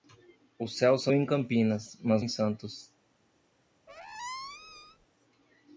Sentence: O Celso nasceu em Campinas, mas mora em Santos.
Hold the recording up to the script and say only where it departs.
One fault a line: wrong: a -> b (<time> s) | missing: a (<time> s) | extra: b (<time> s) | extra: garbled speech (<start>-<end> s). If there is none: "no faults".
missing: nasceu (1.1 s)
missing: mora (2.2 s)